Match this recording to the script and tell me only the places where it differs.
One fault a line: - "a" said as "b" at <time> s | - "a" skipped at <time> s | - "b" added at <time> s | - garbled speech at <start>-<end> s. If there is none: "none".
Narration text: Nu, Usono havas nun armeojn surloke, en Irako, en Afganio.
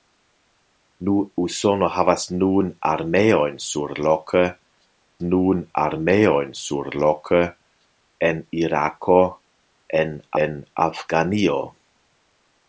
- "nun armeojn surloke" added at 5.3 s
- "en" added at 10.5 s